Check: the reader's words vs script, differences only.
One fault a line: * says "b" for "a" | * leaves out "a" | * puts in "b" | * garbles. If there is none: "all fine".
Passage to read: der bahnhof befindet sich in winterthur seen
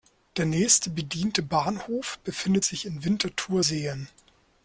* puts in "nächste bediente"